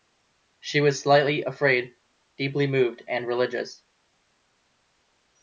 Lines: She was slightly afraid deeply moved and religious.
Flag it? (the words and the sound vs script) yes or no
no